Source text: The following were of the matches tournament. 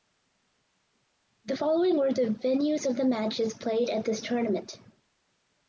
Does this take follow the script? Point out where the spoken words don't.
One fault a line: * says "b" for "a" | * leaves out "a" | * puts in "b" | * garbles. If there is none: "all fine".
* puts in "the venues"
* puts in "played at this"